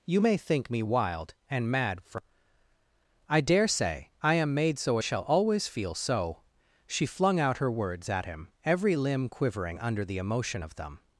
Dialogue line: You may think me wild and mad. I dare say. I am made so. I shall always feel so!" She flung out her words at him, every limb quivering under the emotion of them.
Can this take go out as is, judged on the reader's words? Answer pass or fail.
fail